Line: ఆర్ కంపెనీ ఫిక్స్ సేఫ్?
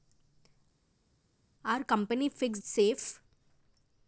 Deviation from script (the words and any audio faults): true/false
false